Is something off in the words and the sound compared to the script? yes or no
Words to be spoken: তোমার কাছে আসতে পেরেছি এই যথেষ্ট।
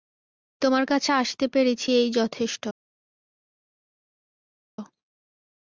no